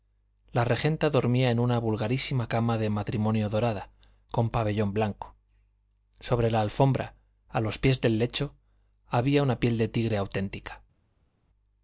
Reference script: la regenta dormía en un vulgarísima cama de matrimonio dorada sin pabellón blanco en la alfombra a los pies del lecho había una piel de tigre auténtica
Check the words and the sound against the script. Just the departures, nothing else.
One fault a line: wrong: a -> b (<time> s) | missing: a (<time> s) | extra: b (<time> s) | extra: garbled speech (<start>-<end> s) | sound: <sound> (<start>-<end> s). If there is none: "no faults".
wrong: un -> una (1.6 s)
wrong: sin -> con (4.3 s)
wrong: en -> sobre (6.2 s)